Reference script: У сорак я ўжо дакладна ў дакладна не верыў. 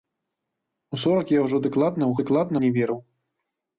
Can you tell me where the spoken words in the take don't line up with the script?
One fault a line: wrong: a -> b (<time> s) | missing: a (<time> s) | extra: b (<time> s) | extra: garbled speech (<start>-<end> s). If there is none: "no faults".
no faults